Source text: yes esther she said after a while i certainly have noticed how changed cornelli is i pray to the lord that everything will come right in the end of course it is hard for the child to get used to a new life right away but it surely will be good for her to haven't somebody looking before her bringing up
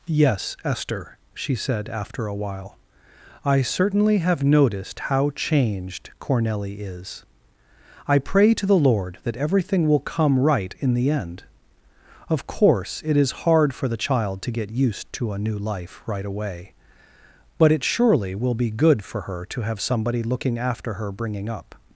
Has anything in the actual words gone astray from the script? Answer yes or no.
yes